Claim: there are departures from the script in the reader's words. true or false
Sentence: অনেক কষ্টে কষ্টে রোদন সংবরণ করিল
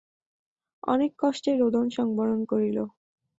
true